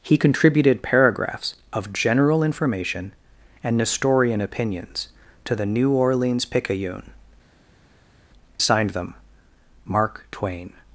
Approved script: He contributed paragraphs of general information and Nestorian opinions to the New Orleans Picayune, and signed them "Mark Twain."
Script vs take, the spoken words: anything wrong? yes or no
yes